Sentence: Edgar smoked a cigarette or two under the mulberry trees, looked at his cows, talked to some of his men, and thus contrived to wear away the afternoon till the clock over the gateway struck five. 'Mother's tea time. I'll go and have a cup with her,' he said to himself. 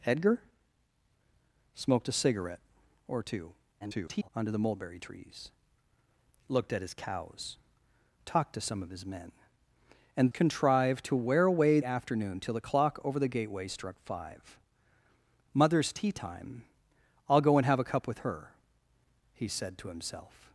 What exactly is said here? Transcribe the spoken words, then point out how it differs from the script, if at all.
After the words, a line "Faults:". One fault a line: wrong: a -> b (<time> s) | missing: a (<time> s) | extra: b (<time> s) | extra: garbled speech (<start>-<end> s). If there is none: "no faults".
Edgar smoked a cigarette or two [garbled] under the mulberry trees, looked at his cows, talked to some of his men, and contrived to wear away afternoon till the clock over the gateway struck five. 'Mother's tea time. I'll go and have a cup with her,' he said to himself.
Faults:
extra: garbled speech (3.8-4.3 s)
missing: thus (10.3 s)
missing: the (11.8 s)